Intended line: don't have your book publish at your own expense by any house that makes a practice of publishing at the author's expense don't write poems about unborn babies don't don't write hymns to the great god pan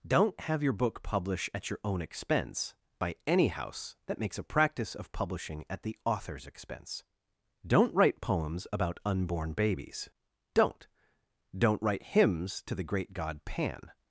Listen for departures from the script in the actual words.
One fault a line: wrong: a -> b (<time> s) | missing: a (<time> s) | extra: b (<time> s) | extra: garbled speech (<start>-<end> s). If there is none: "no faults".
no faults